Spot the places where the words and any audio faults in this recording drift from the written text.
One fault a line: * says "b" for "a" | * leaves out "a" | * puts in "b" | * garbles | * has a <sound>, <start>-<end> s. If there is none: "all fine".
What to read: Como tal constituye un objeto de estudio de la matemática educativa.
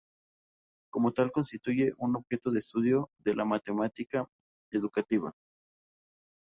all fine